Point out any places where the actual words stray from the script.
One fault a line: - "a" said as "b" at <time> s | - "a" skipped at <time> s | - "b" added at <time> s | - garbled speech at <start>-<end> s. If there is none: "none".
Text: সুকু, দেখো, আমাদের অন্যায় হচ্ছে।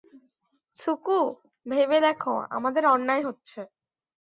- "ভেবে" added at 1.6 s